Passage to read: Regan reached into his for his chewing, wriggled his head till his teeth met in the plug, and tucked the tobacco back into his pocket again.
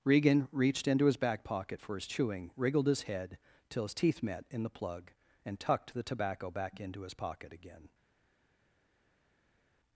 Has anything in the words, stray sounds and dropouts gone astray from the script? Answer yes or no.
yes